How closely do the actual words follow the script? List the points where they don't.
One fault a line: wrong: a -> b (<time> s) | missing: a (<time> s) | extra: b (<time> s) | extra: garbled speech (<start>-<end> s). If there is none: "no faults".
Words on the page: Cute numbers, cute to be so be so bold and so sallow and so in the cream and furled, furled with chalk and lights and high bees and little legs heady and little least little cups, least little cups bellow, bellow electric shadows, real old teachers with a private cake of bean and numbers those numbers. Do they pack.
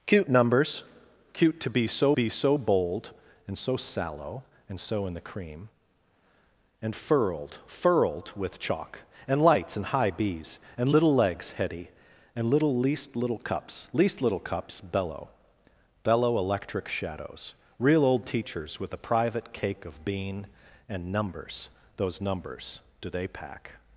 no faults